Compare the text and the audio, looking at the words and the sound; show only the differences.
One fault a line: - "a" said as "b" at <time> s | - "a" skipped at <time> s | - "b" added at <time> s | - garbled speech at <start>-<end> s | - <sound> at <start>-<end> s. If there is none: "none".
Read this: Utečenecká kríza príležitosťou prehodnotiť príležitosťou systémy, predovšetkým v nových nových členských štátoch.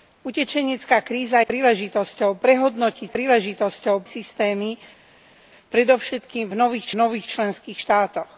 none